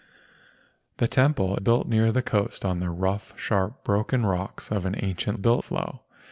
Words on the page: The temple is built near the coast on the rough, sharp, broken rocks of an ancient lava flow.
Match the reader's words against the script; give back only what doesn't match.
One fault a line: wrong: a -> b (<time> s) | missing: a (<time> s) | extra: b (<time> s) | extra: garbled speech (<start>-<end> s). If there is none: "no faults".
missing: is (1.6 s)
wrong: lava -> built (5.4 s)